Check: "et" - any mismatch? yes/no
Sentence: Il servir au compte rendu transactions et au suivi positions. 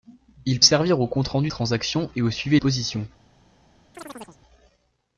no